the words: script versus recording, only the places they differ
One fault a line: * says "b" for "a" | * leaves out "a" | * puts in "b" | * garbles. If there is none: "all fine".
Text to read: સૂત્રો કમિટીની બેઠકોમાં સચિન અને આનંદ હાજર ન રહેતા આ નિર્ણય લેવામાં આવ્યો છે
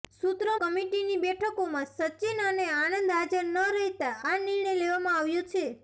all fine